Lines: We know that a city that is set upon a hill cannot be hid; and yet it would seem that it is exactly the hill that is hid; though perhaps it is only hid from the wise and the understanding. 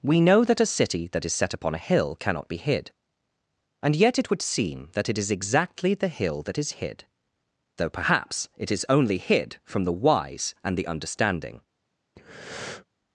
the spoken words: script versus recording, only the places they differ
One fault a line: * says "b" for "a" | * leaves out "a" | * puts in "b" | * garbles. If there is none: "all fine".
all fine